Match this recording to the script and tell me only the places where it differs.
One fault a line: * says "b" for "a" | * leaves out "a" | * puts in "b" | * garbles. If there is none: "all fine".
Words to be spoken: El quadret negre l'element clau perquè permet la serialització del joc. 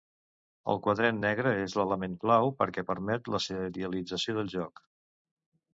* puts in "és"